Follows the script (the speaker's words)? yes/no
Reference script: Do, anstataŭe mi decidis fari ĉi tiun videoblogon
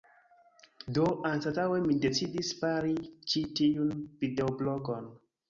yes